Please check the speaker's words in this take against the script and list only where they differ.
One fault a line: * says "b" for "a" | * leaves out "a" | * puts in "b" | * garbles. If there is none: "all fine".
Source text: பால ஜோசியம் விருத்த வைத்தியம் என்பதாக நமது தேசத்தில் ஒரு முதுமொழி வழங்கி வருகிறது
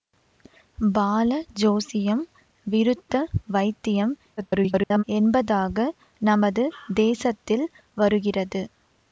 * garbles
* leaves out "ஒரு முதுமொழி வழங்கி"